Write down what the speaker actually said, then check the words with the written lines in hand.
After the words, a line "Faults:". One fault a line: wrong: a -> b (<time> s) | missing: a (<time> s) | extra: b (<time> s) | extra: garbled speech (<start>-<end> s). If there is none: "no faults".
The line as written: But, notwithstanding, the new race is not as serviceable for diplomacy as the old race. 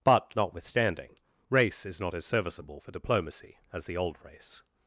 But, notwithstanding, race is not as serviceable for diplomacy as the old race.
Faults:
missing: the new (1.2 s)